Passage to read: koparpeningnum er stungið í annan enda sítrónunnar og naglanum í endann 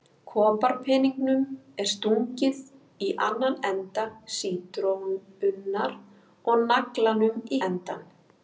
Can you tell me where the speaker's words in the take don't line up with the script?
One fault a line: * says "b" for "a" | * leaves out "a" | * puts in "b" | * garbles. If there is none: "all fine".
all fine